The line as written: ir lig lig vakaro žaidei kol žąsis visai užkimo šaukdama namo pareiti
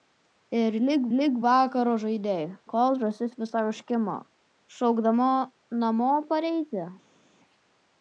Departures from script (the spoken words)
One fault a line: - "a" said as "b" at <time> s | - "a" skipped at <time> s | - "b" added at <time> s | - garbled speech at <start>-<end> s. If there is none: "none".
none